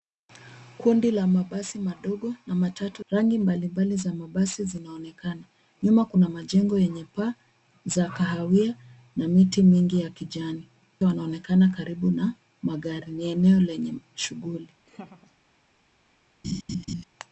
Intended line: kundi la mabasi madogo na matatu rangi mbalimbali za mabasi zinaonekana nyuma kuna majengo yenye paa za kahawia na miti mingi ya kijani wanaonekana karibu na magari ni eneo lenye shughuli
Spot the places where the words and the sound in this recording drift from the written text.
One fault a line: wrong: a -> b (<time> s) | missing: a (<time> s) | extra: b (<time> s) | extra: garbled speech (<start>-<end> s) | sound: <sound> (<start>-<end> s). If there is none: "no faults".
sound: laugh (14.9-15.3 s)
sound: laugh (16.4-17.0 s)